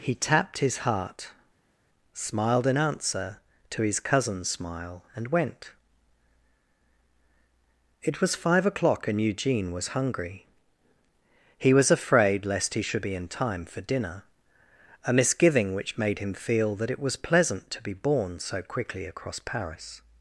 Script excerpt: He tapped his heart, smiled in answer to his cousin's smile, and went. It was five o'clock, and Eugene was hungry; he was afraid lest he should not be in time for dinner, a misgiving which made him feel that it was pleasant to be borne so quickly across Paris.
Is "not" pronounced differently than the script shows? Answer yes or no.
yes